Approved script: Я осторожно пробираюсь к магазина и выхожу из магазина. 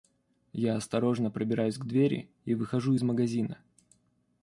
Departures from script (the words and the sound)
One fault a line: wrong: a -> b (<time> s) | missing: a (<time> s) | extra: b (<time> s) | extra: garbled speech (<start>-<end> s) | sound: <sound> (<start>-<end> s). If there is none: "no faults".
wrong: магазина -> двери (1.9 s)